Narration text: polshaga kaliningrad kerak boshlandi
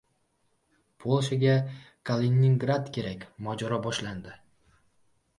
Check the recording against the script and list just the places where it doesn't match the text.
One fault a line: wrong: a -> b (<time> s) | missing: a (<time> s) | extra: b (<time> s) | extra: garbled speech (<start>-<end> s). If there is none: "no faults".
extra: mojaro (3.5 s)